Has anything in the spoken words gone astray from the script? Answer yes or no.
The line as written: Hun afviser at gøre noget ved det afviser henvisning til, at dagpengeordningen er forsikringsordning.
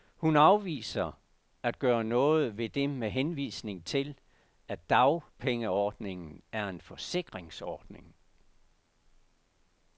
yes